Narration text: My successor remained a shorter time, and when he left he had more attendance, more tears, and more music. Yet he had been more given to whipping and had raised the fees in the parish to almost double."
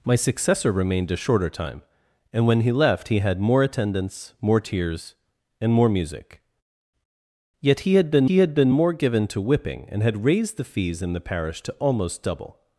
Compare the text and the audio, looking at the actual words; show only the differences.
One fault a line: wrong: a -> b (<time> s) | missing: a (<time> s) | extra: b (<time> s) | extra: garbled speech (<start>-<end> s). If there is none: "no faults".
extra: he had been (8.2 s)